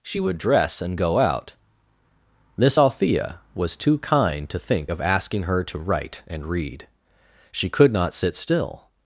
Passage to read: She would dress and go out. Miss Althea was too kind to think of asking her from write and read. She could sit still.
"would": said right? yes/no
yes